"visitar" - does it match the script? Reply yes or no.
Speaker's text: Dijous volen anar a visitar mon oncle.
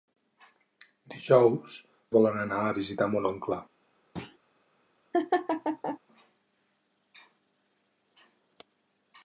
yes